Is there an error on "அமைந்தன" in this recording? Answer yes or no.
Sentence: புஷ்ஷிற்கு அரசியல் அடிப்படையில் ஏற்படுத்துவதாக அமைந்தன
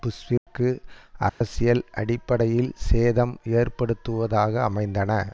no